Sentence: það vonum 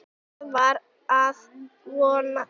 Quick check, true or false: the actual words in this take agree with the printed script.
false